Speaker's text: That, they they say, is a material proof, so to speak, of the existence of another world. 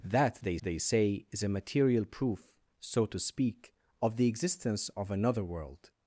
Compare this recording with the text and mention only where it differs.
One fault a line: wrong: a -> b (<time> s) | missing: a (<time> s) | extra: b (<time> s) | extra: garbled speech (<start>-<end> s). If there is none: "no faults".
no faults